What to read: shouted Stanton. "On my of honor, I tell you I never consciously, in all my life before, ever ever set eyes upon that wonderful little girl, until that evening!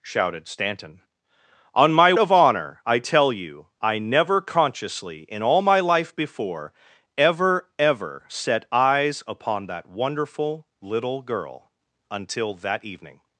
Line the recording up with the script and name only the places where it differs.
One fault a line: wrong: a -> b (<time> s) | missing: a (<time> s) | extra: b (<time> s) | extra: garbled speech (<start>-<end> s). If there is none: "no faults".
no faults